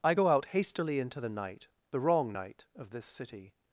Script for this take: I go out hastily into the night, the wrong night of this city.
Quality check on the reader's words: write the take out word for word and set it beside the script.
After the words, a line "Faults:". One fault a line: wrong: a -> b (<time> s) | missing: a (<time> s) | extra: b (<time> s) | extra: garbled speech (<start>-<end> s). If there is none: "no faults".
I go out hastily into the night, the wrong night of this city.
Faults:
no faults